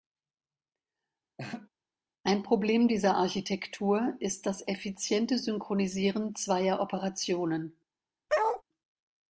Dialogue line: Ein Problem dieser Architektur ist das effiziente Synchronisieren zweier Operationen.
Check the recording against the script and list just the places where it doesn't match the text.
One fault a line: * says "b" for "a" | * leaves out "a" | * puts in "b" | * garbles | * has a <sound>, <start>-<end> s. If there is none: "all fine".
* has a laugh, 1.4-1.7 s
* has a bark, 8.3-8.6 s